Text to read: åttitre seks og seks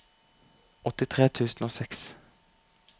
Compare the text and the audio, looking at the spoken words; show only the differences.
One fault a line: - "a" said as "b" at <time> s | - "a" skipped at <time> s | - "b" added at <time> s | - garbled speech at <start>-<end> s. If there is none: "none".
- "seks" said as "tusen" at 1.4 s